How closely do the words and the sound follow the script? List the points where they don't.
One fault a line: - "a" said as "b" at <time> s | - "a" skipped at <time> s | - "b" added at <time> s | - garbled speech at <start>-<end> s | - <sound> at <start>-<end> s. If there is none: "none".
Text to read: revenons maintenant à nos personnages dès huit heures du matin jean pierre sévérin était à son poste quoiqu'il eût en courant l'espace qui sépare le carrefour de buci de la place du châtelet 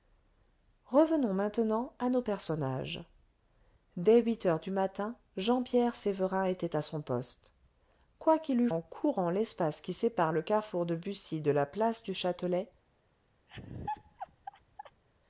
- laugh at 13.5-15.0 s